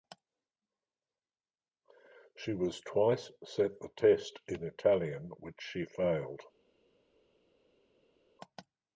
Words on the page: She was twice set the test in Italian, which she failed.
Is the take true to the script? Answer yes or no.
yes